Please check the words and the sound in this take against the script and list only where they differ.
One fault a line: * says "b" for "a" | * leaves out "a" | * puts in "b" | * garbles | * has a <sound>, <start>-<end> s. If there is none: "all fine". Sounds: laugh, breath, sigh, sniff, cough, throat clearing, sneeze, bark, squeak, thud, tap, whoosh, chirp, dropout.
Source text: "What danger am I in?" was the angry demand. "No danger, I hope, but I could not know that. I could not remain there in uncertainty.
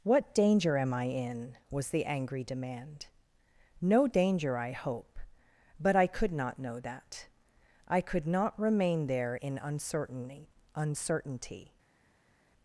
* puts in "uncertainty"